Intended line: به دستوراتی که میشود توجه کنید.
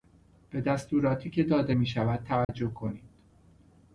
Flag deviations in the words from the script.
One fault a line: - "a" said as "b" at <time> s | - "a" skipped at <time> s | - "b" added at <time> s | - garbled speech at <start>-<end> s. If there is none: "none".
- "داده" added at 1.4 s